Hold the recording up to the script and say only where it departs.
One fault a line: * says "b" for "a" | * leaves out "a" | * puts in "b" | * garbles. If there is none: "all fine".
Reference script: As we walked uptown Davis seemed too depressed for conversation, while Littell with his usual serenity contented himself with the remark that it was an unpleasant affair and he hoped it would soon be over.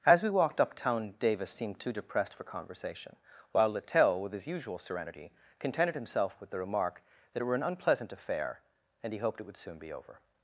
* says "were" for "was"